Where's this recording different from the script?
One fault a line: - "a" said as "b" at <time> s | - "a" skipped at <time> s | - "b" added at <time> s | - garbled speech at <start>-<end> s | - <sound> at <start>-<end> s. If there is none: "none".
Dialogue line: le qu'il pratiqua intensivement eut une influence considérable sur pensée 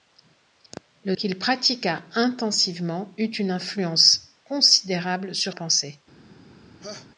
- laugh at 6.8-7.1 s